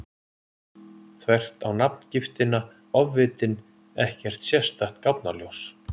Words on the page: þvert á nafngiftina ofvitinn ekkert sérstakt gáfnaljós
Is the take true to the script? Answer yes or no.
yes